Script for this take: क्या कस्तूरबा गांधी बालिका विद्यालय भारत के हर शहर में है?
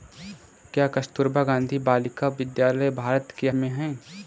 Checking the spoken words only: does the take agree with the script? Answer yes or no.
no